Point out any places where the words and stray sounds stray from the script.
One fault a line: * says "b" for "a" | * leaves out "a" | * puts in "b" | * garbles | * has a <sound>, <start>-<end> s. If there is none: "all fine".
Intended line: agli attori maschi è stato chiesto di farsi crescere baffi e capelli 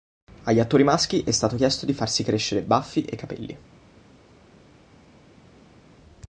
all fine